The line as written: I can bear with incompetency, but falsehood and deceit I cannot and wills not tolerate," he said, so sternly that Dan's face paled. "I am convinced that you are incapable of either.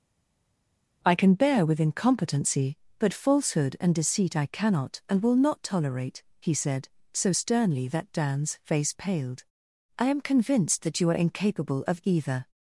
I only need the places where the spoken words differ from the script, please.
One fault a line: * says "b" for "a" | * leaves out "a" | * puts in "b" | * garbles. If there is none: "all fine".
* says "will" for "wills"